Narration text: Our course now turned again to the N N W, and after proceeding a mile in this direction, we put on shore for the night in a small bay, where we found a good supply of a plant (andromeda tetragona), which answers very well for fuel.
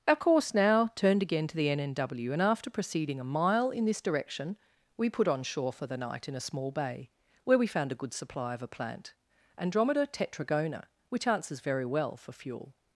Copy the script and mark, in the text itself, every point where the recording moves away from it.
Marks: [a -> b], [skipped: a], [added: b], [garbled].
Our course now turned again to the N N W, and after proceeding a mile in this direction, we put on shore for the night in a small bay, where we found a good supply of a plant (andromeda tetragona), which answers very well for fuel.